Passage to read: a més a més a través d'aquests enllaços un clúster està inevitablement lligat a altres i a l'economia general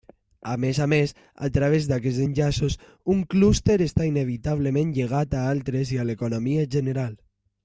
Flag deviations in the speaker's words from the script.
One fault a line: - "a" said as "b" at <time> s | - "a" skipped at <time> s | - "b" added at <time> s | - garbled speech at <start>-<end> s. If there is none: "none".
none